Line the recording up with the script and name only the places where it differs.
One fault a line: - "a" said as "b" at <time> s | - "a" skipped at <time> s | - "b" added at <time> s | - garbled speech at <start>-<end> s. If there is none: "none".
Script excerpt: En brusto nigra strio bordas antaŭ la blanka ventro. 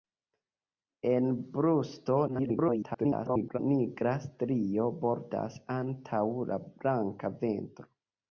- garbled speech at 2.3-3.6 s